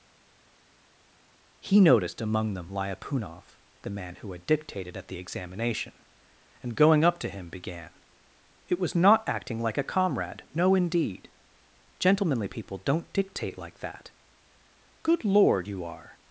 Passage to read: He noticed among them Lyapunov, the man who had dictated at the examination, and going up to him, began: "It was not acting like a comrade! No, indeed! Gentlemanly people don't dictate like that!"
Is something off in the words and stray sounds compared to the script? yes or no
yes